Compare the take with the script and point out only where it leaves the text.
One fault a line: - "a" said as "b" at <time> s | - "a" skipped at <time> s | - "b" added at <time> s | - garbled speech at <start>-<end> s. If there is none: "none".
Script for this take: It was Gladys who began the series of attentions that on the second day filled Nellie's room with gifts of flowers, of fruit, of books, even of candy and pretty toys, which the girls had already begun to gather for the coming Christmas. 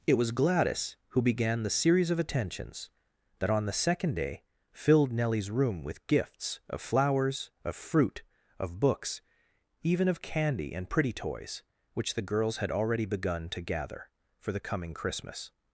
none